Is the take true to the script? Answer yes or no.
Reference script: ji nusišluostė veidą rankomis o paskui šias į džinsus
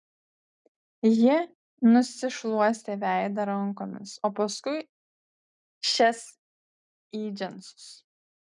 yes